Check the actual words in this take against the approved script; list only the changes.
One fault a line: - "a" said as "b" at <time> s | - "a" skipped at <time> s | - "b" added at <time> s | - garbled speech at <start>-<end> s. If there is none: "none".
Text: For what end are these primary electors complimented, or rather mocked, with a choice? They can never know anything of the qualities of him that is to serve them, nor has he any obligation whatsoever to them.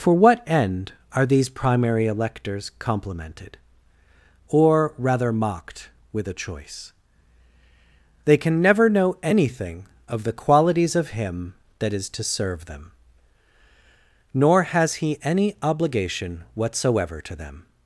none